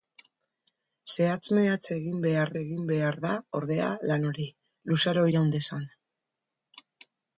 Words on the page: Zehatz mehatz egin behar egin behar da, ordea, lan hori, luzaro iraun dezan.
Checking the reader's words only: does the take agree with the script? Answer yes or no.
yes